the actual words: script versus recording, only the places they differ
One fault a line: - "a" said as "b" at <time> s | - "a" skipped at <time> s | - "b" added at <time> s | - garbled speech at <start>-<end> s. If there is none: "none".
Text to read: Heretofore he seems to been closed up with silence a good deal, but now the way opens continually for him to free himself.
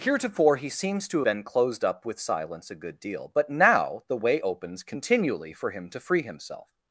none